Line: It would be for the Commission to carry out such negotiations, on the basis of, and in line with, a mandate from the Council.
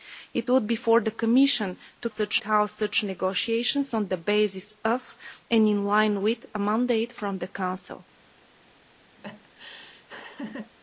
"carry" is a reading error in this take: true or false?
true